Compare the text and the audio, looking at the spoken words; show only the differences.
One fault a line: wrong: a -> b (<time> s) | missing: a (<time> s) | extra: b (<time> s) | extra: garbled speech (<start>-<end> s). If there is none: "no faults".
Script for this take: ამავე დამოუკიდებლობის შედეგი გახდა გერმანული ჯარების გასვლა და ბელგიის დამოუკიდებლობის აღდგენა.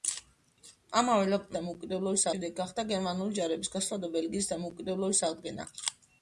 no faults